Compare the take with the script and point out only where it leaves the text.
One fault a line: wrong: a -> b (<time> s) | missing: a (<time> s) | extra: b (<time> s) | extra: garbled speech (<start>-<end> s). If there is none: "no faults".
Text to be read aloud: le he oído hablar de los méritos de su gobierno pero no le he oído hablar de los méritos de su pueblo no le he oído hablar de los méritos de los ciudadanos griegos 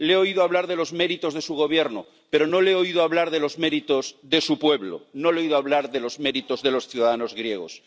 no faults